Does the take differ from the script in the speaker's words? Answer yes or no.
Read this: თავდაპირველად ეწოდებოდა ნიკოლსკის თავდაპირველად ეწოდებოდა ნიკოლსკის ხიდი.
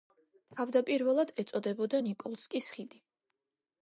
yes